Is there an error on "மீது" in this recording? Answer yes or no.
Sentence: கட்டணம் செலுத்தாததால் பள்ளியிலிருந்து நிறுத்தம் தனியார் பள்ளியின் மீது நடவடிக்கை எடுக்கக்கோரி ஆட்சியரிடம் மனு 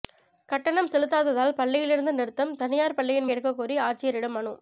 yes